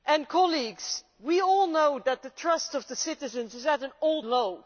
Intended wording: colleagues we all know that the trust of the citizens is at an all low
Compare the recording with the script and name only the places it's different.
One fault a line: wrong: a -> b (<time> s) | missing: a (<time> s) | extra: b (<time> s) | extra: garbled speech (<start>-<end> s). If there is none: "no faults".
no faults